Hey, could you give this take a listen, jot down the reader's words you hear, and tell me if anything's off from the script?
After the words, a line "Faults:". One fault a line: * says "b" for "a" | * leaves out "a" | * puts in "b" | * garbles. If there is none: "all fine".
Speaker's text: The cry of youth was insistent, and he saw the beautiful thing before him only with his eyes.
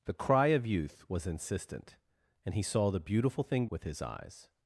The cry of youth was insistent, and he saw the beautiful thing with his eyes.
Faults:
* leaves out "before him only"